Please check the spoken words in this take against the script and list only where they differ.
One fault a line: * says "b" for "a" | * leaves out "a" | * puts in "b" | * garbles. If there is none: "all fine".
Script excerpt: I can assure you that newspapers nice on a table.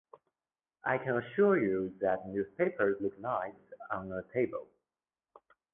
* puts in "look"